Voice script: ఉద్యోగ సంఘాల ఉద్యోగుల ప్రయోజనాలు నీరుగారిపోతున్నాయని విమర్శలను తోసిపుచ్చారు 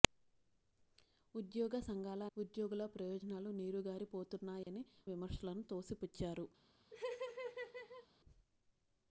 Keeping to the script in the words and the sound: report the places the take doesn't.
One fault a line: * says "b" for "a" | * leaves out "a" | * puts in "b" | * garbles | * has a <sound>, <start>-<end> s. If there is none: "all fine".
* has a dropout, 4.6-4.7 s
* has a laugh, 6.9-8.1 s